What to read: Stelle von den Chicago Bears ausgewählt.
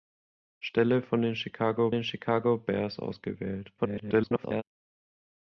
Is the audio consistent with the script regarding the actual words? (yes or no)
no